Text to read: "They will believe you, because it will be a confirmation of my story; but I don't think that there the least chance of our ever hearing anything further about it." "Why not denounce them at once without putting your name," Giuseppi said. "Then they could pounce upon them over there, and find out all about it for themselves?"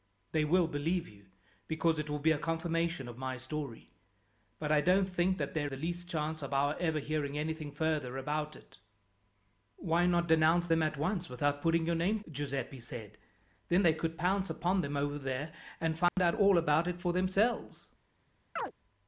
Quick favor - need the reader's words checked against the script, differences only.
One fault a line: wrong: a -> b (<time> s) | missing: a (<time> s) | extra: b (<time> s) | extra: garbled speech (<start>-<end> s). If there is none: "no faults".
no faults